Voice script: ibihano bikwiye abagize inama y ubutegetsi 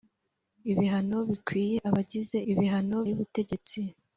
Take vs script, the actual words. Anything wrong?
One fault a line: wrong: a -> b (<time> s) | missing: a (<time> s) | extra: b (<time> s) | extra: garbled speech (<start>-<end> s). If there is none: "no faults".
wrong: inama -> ibihano (2.5 s)